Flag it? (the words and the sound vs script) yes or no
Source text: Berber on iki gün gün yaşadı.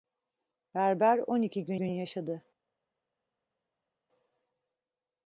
no